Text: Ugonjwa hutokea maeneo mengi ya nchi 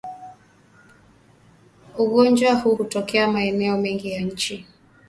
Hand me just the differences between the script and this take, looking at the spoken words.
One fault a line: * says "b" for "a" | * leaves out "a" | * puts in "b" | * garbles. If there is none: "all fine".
* puts in "huu"